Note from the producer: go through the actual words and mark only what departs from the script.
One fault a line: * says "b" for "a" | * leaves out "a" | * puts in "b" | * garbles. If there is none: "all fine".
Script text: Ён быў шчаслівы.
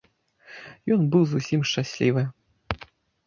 * puts in "зусім"